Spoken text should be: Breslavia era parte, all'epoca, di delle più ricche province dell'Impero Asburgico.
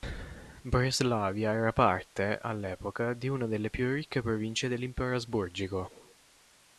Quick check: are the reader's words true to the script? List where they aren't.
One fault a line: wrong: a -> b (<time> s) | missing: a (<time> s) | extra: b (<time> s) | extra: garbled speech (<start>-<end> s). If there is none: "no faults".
extra: una (3.3 s)